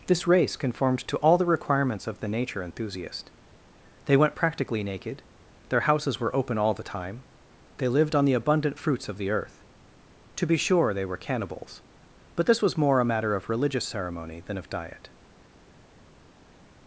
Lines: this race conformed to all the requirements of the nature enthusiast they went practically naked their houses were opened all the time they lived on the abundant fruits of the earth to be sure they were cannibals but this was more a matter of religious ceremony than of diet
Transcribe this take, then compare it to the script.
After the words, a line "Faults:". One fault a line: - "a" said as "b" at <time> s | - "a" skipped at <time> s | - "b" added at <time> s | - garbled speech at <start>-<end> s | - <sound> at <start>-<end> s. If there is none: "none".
this race conformed to all the requirements of the nature enthusiast they went practically naked their houses were open all the time they lived on the abundant fruits of the earth to be sure they were cannibals but this was more a matter of religious ceremony than of diet
Faults:
- "opened" said as "open" at 6.3 s